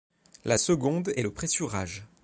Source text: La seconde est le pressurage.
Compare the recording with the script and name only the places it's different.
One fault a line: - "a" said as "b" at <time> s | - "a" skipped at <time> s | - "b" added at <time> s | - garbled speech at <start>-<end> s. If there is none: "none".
none